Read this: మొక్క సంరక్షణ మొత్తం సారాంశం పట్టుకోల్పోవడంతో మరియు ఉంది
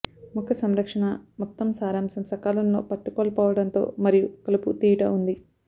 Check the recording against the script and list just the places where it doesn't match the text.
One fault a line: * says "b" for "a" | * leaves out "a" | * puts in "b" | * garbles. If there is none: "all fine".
* puts in "సకాలంలో"
* puts in "కలుపు తీయుట"